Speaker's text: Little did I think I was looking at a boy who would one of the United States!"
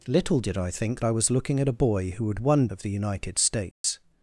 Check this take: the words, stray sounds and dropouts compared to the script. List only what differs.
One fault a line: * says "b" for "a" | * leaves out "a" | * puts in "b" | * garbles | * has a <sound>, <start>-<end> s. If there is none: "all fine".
* has a dropout, 3.7-3.8 s